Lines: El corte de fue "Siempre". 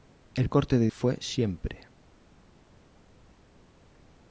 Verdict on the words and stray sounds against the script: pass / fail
pass